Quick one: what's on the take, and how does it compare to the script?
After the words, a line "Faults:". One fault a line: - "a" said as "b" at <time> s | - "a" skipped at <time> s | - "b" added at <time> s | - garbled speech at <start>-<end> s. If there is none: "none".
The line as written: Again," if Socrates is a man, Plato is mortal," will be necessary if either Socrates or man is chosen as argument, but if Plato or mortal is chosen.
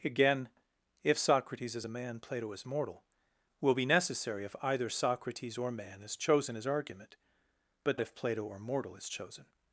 Again," if Socrates is a man, Plato is mortal," will be necessary if either Socrates or man is chosen as argument, but if Plato or mortal is chosen.
Faults:
none